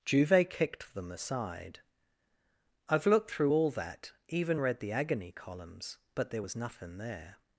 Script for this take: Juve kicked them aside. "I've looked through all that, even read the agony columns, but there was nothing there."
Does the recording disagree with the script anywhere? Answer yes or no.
no